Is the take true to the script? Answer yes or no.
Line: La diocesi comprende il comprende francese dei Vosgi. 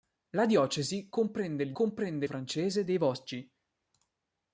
yes